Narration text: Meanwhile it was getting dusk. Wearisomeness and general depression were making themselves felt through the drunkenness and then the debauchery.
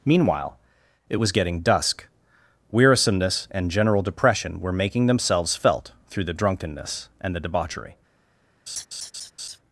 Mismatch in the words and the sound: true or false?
true